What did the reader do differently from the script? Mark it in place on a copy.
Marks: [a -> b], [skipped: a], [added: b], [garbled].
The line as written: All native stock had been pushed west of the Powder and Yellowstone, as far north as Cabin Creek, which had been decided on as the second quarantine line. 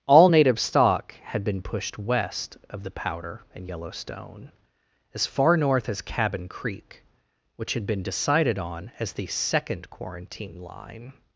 All native stock had been pushed west of the Powder and Yellowstone, as far north as Cabin Creek, which had been decided on as the second quarantine line.